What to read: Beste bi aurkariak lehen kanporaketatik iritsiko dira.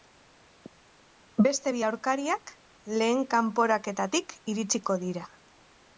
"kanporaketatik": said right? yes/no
yes